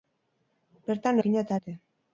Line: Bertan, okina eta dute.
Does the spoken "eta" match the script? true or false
true